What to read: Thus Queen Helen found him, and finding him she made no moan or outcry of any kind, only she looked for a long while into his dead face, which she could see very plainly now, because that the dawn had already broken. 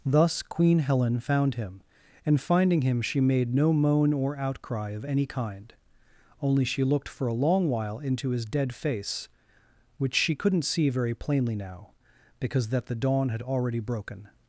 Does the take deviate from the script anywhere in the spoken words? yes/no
yes